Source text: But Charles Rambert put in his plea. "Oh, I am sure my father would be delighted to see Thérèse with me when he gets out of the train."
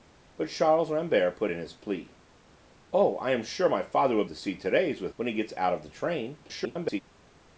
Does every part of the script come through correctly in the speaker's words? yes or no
no